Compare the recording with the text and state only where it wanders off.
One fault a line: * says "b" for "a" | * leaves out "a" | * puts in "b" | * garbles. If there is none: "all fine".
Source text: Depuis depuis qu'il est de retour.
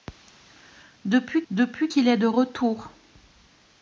all fine